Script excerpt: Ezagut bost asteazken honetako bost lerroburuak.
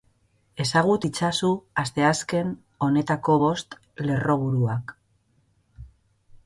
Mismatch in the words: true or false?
true